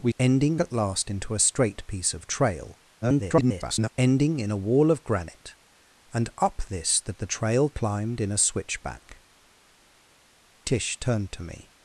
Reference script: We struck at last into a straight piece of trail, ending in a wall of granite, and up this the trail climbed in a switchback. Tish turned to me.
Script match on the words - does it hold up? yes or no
no